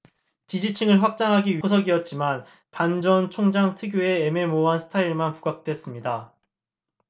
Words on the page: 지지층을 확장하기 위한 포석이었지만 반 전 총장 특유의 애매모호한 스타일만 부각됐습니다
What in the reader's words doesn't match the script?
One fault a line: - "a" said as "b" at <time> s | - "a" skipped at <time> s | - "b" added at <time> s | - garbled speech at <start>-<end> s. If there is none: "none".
- "위한" skipped at 1.6 s